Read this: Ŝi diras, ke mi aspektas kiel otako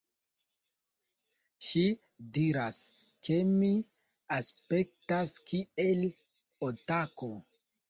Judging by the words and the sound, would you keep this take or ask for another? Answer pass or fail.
pass